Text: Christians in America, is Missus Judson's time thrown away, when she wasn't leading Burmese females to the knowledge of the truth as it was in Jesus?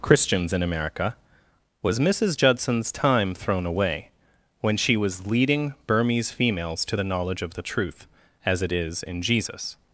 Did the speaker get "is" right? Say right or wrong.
wrong